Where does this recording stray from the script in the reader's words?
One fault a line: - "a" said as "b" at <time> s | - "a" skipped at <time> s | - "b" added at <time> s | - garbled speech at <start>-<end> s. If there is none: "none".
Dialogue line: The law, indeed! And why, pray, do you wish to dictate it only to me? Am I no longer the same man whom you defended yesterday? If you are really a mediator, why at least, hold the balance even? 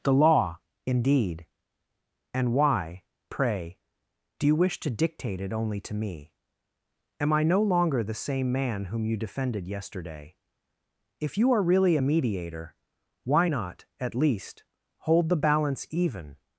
- "not" added at 13.5 s